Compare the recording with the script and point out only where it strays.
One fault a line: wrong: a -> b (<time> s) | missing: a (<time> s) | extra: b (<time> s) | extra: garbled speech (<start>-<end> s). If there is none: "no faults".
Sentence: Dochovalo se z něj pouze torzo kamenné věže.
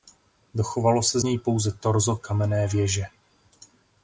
missing: z (1.2 s)